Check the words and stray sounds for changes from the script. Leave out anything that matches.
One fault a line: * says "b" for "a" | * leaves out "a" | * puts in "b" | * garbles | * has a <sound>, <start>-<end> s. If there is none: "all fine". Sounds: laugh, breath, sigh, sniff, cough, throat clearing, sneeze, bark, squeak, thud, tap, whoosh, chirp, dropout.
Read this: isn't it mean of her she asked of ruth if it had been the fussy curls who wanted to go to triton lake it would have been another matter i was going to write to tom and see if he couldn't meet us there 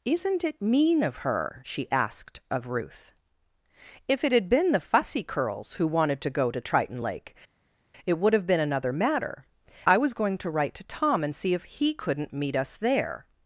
all fine